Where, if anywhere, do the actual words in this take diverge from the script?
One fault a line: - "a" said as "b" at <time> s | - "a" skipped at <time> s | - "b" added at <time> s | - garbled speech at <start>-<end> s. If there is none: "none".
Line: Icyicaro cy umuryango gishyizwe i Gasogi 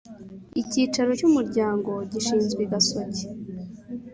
none